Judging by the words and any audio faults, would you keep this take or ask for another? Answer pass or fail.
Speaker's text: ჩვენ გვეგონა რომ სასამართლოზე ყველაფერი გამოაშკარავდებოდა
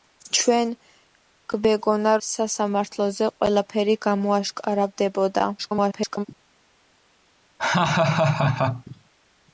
fail